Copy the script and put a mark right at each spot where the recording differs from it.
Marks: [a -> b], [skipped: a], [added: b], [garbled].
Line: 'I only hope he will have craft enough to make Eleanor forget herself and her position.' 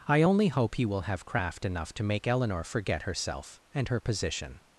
'I only hope he will have craft enough to make Eleanor forget herself and her position.'